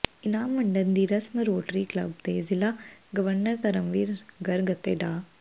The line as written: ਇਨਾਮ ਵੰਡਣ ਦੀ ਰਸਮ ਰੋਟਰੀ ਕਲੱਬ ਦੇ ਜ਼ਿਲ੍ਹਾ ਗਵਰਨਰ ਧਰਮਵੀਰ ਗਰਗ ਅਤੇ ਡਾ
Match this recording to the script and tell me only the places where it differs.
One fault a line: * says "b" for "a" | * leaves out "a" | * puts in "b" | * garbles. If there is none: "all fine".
all fine